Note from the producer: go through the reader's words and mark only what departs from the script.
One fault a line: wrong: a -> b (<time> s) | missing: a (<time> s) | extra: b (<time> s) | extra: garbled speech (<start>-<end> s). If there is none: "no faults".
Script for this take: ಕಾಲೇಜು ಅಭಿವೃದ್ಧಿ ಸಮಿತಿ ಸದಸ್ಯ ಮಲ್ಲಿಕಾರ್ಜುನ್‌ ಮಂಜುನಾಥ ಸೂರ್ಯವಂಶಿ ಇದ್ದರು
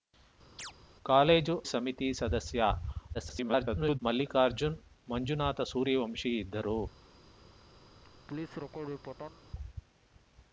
missing: ಅಭಿವೃದ್ಧಿ (1.5 s)
extra: garbled speech (3.1-4.0 s)